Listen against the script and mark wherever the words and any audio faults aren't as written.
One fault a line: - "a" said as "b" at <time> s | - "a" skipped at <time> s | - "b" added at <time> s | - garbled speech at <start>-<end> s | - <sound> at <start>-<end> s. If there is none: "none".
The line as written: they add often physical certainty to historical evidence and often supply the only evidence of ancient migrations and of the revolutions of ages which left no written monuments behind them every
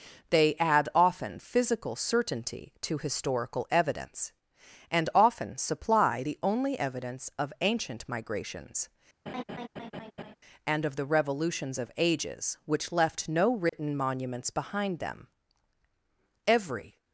- laugh at 9.3-10.4 s
- dropout at 13.7-13.7 s